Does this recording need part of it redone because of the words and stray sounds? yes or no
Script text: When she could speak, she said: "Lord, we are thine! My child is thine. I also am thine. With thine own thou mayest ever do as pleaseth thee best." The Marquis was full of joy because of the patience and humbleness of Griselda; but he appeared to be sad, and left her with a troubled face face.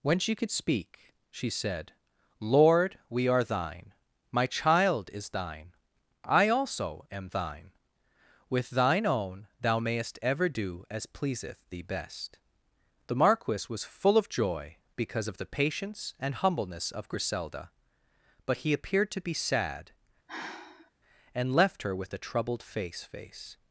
yes